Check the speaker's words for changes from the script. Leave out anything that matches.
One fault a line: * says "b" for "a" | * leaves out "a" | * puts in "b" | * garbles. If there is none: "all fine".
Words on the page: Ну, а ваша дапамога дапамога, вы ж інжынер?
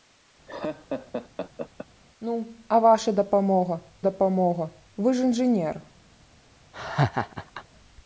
all fine